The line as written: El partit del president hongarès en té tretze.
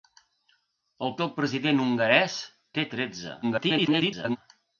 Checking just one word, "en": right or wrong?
wrong